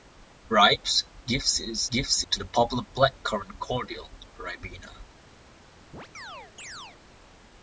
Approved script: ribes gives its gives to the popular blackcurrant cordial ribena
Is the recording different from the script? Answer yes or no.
no